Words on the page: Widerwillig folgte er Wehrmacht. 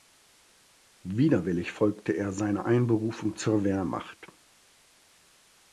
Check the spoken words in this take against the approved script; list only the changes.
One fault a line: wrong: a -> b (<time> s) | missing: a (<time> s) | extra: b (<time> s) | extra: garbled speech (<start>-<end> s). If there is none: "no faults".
extra: seiner Einberufung zur (2.3 s)